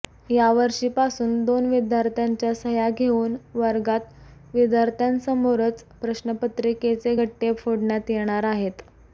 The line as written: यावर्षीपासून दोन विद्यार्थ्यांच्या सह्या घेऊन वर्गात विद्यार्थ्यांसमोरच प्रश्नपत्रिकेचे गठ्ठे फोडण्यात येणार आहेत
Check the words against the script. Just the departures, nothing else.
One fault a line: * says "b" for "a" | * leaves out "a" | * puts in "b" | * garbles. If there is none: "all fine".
all fine